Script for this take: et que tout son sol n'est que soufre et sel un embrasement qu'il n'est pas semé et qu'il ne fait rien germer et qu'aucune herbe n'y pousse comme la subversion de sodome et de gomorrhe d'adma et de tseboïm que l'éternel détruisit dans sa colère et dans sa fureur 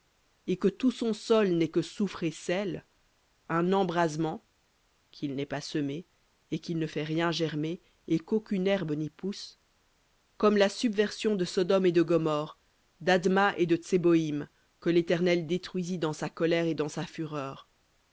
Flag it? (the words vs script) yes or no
no